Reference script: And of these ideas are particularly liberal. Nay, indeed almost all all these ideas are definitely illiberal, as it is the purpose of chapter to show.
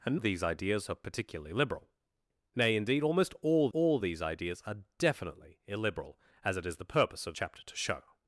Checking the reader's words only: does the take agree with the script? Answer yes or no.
yes